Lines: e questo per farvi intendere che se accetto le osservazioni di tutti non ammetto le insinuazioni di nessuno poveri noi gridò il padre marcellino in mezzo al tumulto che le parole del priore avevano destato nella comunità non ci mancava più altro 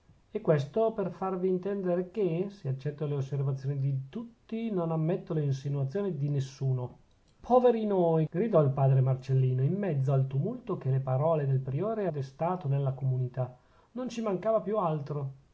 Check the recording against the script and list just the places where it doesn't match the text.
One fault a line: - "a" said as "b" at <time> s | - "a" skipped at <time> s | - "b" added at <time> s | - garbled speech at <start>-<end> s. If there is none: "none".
- "avevano" skipped at 12.1 s